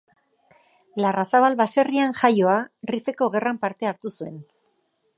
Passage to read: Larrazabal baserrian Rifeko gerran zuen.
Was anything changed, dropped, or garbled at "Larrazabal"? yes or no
no